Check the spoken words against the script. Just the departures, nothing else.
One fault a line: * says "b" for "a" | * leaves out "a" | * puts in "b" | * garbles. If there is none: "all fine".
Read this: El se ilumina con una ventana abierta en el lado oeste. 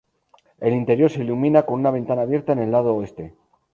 * puts in "interior"